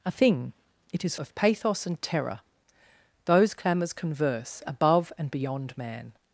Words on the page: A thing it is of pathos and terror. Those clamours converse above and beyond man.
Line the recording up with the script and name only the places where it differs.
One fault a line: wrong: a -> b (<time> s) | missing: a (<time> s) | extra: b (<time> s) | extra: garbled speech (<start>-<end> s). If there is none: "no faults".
no faults